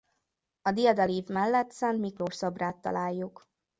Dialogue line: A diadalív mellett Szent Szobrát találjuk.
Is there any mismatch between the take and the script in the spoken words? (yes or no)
yes